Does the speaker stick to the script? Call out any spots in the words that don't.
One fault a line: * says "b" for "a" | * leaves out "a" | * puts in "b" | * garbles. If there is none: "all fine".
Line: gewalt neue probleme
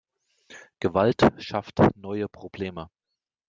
* puts in "schafft"